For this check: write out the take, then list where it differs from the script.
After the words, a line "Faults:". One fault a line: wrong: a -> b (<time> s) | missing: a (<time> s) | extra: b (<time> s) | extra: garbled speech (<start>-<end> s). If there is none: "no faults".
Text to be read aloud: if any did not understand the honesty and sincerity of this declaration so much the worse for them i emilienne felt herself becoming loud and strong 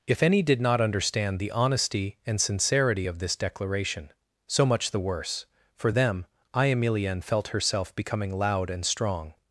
if any did not understand the honesty and sincerity of this declaration so much the worse for them i emilienne felt herself becoming loud and strong
Faults:
no faults